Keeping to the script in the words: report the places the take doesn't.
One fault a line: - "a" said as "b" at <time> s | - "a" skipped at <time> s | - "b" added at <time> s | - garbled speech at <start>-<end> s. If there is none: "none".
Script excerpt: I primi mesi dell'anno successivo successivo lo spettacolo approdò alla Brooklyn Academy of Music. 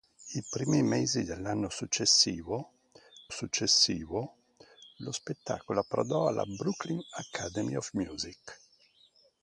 none